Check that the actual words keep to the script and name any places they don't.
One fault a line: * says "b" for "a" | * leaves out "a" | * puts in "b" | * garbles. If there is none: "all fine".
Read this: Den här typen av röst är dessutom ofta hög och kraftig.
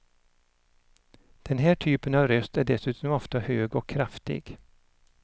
all fine